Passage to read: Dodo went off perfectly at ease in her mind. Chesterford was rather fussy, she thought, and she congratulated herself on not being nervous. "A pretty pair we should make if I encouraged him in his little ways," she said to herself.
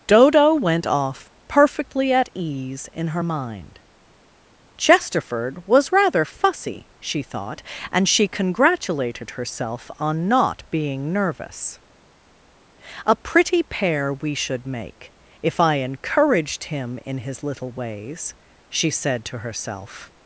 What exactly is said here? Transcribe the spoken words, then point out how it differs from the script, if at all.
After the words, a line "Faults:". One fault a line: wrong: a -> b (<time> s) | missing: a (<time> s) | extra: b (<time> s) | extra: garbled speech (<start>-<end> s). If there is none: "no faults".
Dodo went off perfectly at ease in her mind. Chesterford was rather fussy, she thought, and she congratulated herself on not being nervous. "A pretty pair we should make if I encouraged him in his little ways," she said to herself.
Faults:
no faults